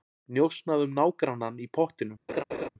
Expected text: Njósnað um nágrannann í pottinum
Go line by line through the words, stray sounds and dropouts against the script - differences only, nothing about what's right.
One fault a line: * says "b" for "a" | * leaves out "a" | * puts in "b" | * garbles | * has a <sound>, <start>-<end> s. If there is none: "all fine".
* has a laugh, 2.3-2.7 s